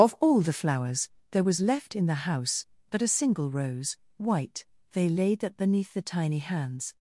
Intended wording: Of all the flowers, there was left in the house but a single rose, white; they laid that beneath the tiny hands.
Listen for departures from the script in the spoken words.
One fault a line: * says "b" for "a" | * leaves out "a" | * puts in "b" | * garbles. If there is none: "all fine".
all fine